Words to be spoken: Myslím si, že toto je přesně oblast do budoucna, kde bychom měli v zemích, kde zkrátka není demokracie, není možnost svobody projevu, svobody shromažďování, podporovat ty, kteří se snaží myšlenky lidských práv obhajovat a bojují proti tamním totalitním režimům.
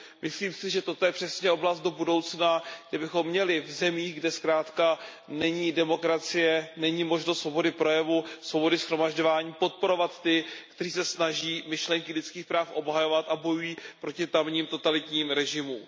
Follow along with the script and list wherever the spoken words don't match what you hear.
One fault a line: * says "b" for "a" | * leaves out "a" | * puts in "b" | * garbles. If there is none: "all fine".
all fine